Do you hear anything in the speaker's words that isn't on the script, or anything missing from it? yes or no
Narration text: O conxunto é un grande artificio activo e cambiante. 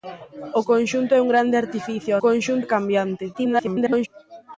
yes